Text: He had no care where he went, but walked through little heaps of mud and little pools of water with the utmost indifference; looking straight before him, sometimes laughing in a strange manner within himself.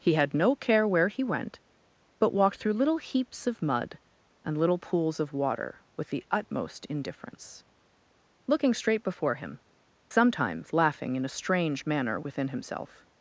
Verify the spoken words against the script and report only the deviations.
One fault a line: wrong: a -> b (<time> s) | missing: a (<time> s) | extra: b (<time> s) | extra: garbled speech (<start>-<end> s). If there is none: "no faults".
no faults